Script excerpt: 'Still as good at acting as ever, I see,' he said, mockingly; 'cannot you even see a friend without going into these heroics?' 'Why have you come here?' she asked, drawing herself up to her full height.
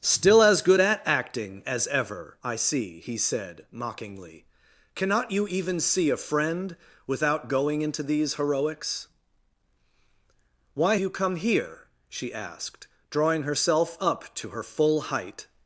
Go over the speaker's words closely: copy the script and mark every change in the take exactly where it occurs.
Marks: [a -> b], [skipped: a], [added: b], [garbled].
'Still as good at acting as ever, I see,' he said, mockingly; 'cannot you even see a friend without going into these heroics?' 'Why [skipped: have] you come here?' she asked, drawing herself up to her full height.